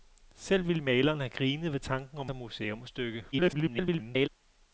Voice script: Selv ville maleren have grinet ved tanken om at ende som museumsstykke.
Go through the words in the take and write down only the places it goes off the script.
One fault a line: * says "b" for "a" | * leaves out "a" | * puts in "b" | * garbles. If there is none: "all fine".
* leaves out "at ende"
* garbles